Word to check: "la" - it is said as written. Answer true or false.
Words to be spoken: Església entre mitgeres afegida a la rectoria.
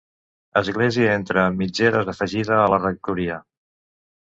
true